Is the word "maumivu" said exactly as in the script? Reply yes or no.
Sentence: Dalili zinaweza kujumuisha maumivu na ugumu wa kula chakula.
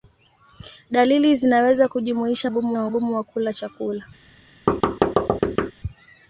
no